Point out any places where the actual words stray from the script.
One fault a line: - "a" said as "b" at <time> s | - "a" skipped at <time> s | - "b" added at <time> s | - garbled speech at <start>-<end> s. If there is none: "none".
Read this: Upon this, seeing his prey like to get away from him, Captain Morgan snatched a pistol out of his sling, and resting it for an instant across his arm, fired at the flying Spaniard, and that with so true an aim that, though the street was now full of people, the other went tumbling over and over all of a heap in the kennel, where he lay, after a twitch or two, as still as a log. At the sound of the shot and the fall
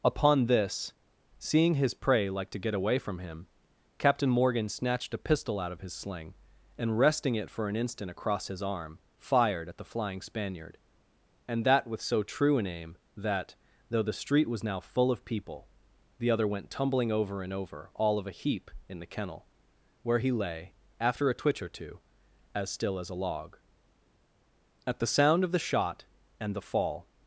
none